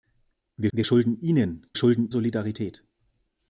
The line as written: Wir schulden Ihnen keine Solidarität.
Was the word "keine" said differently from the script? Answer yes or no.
yes